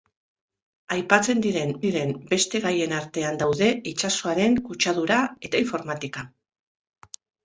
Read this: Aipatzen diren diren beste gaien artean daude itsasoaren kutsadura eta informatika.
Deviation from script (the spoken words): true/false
false